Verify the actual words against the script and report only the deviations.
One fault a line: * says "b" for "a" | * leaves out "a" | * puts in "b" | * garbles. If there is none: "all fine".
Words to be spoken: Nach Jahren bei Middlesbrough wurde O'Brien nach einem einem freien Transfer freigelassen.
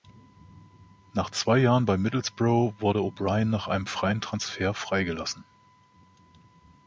* puts in "zwei"
* leaves out "einem"